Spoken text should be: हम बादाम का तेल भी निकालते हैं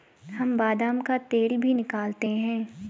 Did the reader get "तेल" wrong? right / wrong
right